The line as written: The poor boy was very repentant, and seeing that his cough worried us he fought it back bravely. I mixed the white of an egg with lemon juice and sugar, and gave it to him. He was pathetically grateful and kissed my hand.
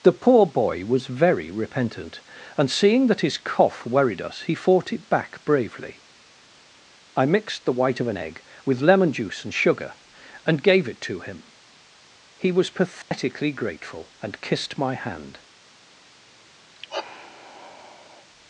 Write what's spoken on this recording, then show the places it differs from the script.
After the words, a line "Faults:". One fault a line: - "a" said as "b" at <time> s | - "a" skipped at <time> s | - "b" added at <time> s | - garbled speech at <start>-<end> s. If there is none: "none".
The poor boy was very repentant, and seeing that his cough worried us he fought it back bravely. I mixed the white of an egg with lemon juice and sugar, and gave it to him. He was pathetically grateful and kissed my hand.
Faults:
none